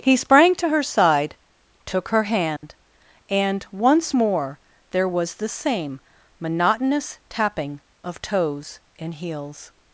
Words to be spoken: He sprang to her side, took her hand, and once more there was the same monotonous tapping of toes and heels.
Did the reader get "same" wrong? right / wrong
right